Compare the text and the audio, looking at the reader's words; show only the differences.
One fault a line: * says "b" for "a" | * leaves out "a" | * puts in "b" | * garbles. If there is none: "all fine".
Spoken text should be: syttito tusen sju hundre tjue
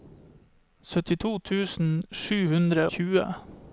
all fine